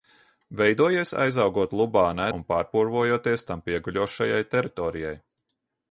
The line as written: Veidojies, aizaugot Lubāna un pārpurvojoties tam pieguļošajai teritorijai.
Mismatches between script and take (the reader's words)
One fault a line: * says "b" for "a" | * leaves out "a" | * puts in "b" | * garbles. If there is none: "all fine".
all fine